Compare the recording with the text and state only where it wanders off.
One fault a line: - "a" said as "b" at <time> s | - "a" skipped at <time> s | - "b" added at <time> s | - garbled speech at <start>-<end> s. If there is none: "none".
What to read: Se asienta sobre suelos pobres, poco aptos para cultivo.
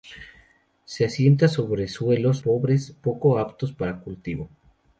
none